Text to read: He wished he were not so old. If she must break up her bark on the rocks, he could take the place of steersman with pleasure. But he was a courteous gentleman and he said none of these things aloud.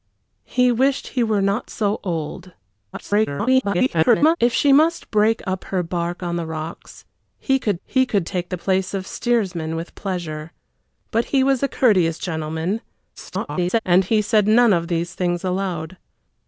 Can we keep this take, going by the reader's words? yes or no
no